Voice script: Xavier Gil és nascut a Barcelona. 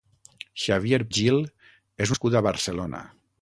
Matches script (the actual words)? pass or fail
pass